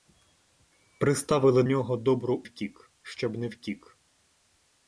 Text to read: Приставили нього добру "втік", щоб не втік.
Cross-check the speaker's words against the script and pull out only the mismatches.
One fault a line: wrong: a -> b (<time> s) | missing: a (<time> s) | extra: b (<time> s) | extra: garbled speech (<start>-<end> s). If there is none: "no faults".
no faults